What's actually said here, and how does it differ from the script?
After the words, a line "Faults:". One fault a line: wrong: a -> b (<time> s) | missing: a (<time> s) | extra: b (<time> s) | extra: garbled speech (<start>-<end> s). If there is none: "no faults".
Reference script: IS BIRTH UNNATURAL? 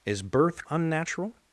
IS BIRTH UNNATURAL?
Faults:
no faults